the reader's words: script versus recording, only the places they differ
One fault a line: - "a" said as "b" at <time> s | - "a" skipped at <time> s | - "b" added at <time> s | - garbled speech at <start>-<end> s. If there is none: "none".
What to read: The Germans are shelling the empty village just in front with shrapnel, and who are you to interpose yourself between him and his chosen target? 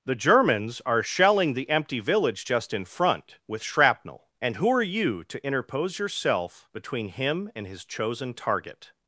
none